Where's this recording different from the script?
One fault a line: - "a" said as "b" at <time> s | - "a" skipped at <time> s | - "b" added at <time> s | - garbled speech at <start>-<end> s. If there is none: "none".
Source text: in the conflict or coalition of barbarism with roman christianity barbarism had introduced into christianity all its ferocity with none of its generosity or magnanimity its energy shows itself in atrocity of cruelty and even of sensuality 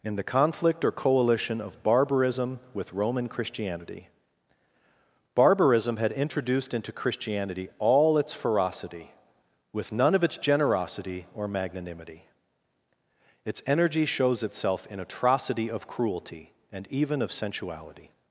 none